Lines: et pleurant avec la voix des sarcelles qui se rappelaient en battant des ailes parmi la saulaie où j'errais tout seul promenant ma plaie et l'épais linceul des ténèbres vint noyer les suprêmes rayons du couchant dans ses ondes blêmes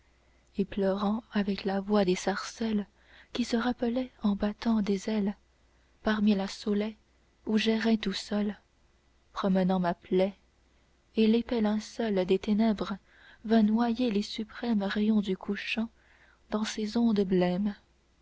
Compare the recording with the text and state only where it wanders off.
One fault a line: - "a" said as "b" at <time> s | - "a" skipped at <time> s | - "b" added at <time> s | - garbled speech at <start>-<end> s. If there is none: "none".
none